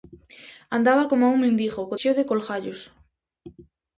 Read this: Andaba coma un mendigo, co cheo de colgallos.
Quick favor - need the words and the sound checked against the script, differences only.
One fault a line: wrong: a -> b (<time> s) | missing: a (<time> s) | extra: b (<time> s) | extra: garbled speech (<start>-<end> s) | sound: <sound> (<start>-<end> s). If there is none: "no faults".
no faults